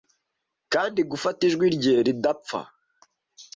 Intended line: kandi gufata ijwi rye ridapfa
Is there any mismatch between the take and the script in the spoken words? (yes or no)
no